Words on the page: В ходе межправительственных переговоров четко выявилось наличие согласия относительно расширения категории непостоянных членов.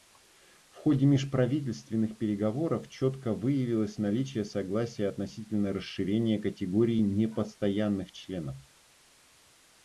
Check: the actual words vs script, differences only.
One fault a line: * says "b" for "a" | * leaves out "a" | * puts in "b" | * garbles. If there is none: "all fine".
all fine